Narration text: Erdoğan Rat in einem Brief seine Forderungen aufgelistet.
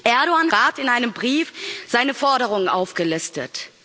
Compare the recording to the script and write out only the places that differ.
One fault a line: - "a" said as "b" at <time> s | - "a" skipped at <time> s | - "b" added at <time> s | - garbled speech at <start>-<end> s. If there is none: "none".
none